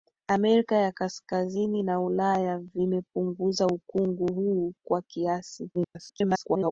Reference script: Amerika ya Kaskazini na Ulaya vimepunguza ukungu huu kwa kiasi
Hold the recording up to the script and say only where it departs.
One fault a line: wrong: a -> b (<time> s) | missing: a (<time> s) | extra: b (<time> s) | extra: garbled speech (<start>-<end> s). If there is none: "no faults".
extra: garbled speech (5.7-6.7 s)